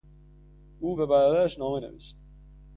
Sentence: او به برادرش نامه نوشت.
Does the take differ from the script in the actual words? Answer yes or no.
no